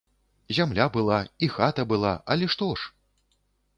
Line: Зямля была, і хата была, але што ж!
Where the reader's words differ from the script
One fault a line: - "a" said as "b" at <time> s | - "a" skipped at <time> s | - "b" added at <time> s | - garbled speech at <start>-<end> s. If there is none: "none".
none